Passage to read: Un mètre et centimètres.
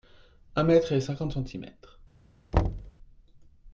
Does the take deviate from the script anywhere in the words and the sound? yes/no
yes